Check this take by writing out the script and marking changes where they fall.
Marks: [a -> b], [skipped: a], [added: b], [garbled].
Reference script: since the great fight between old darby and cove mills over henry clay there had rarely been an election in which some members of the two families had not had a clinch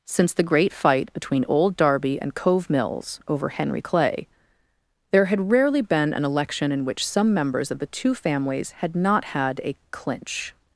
since the great fight between old darby and cove mills over henry clay there had rarely been an election in which some members of the two families had not had a clinch